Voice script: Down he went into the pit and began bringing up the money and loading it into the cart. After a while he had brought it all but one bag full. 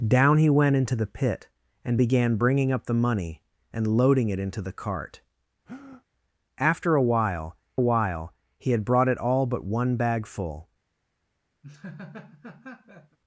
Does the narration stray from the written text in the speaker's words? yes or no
yes